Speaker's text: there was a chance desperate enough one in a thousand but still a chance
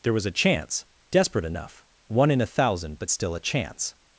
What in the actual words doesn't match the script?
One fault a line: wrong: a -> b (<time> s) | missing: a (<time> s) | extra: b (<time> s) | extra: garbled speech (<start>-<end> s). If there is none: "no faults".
no faults